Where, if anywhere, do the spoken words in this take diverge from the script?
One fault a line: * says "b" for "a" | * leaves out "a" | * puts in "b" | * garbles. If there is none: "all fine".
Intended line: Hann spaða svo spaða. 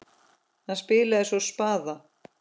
* says "spilaði" for "spaða"